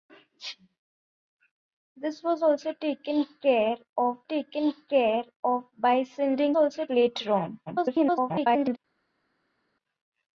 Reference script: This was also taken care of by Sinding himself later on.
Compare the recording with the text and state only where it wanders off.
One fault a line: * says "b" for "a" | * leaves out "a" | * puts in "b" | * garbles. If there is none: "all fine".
* puts in "taken care of"
* says "also" for "himself"
* garbles